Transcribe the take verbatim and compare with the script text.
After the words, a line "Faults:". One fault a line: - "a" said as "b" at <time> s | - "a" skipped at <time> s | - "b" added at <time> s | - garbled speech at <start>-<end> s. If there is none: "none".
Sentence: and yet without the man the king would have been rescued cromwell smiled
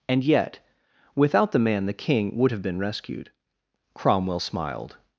and yet without the man the king would have been rescued cromwell smiled
Faults:
none